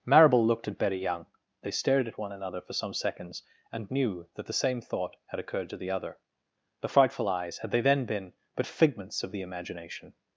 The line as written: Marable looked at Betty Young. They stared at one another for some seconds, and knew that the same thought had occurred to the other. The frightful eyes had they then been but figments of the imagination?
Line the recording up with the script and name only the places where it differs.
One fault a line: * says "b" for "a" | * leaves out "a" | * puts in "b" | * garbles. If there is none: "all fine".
all fine